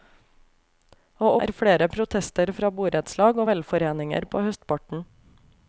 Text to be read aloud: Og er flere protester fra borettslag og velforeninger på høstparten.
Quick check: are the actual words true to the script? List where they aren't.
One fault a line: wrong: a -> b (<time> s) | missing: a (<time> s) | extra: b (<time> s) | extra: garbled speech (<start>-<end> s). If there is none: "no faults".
no faults